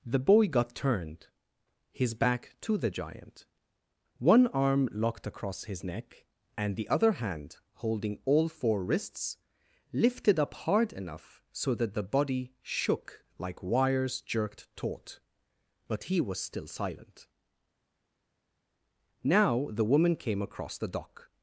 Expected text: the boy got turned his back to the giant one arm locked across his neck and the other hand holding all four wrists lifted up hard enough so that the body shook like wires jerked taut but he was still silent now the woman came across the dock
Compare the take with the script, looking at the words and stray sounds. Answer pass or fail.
pass